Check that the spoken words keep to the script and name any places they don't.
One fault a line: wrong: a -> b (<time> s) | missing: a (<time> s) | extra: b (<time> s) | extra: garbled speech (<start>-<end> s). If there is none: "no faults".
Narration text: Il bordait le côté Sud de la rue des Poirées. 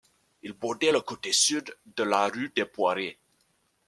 no faults